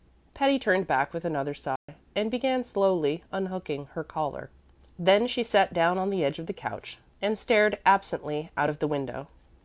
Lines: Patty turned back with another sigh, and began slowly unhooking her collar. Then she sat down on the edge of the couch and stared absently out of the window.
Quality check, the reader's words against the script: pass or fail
pass